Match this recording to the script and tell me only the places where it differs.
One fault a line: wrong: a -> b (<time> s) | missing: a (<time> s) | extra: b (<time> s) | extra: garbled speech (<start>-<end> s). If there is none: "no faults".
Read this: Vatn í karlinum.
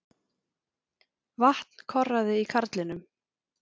extra: korraði (1.9 s)